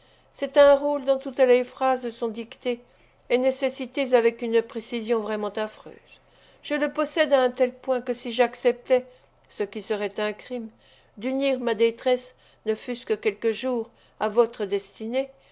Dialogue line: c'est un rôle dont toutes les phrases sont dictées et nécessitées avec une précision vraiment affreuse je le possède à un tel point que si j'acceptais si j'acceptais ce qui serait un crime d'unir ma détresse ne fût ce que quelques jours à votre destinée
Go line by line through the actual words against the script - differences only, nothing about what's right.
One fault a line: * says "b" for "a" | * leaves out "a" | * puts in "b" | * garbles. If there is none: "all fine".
* leaves out "si j'acceptais"